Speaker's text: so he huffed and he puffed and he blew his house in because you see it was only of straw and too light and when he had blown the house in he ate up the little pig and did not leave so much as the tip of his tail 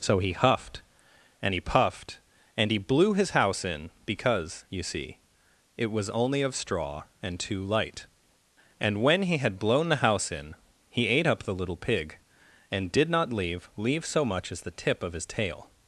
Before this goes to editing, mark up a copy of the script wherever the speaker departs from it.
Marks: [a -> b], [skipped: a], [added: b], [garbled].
so he huffed and he puffed and he blew his house in because you see it was only of straw and too light and when he had blown the house in he ate up the little pig and did not leave [added: leave] so much as the tip of his tail